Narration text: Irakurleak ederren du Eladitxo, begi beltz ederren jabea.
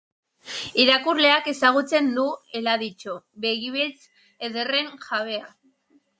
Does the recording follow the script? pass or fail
fail